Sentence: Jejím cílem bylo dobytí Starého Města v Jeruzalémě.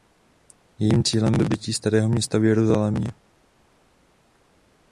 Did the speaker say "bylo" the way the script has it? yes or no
no